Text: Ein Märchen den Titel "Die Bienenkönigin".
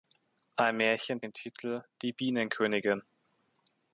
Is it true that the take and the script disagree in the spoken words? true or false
false